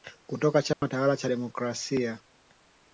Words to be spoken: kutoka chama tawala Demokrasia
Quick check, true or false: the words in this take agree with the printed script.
false